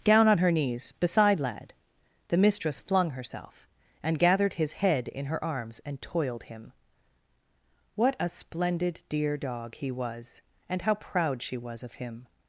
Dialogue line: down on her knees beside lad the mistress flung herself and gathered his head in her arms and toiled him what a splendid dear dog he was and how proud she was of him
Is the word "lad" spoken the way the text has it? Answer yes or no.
yes